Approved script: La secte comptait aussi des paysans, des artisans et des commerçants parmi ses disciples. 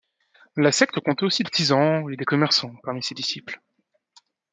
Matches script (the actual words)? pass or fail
fail